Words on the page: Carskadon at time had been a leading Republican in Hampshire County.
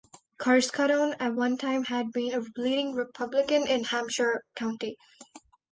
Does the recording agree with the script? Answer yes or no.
no